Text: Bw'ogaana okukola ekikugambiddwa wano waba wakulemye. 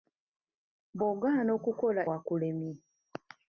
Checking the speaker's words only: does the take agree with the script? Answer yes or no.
no